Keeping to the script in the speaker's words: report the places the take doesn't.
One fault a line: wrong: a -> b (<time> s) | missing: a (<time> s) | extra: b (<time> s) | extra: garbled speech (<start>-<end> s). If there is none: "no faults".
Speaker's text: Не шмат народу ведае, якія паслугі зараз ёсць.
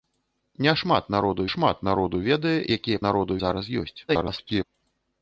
extra: шмат народу (1.5 s)
wrong: паслугі -> народу (3.1 s)
extra: garbled speech (4.1-4.6 s)